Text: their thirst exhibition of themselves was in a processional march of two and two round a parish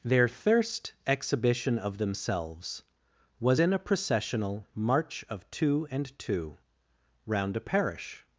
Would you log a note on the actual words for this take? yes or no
no